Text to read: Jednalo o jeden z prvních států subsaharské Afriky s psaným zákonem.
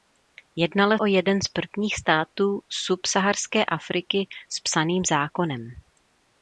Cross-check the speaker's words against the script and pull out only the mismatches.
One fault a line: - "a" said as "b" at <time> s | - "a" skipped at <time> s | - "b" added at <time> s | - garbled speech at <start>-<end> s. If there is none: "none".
none